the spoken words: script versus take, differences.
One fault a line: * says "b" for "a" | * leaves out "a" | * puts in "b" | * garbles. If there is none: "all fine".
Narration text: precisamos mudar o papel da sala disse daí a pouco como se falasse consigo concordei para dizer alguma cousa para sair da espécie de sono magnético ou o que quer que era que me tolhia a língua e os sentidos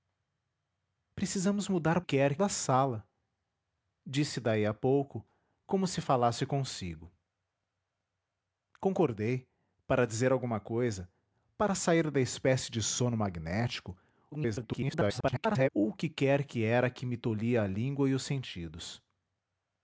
* says "quer" for "papel"
* garbles